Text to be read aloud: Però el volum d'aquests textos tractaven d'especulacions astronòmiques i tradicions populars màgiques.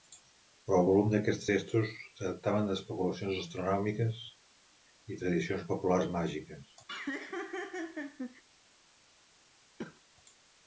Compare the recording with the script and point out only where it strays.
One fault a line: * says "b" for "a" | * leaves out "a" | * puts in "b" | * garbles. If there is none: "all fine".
all fine